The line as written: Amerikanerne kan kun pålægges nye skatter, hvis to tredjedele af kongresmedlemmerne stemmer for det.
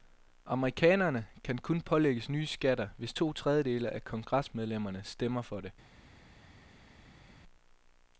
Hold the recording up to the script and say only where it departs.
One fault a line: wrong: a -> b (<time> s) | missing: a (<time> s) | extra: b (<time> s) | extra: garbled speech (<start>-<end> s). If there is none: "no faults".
no faults